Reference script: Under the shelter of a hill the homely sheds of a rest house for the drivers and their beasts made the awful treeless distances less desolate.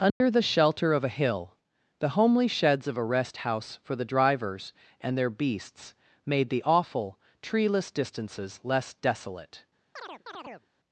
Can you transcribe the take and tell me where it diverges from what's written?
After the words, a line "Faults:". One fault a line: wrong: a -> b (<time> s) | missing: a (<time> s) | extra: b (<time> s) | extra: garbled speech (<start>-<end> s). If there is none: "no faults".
Under the shelter of a hill the homely sheds of a rest house for the drivers and their beasts made the awful treeless distances less desolate.
Faults:
no faults